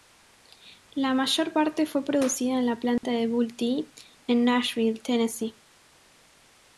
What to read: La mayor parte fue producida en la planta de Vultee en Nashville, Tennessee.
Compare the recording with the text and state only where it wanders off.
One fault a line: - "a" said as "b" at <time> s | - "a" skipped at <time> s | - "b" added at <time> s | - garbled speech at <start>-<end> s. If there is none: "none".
none